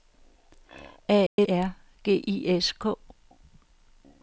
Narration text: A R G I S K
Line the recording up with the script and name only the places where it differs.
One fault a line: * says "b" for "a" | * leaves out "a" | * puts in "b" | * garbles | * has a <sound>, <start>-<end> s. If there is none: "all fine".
* has a dropout, 1.3-1.4 s